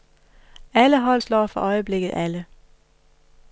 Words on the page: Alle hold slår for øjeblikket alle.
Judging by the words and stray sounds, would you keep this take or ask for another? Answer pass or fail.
pass